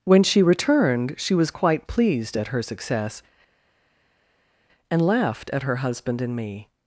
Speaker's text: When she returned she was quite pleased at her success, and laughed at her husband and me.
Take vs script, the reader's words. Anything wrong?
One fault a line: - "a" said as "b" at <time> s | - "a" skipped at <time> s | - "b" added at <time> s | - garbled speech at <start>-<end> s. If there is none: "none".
none